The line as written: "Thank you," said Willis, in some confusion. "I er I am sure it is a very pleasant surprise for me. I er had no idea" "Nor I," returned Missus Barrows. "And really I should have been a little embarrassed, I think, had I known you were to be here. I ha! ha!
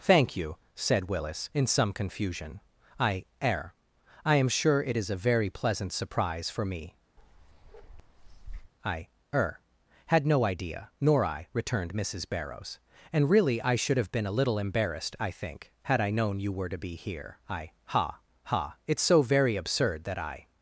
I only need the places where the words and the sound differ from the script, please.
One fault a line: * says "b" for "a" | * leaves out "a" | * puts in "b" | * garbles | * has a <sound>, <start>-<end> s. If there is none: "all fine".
* has a bark, 7.2-8.7 s
* puts in "it's so very absurd that I"